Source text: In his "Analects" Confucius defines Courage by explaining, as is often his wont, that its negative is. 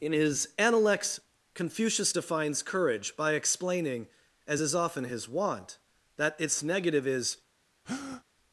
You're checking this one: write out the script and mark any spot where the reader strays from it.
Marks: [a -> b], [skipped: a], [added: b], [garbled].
In his "Analects" Confucius defines Courage by explaining, as is often his wont, that its negative is.